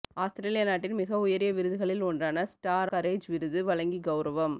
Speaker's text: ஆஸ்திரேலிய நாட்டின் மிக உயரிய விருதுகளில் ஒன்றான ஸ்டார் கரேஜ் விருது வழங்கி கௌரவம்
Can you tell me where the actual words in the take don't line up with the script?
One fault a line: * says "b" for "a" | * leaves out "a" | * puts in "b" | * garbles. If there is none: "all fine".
all fine